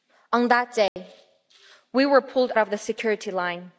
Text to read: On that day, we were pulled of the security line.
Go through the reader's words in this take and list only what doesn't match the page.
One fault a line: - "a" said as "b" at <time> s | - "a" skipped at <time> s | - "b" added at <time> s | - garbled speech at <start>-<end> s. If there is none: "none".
none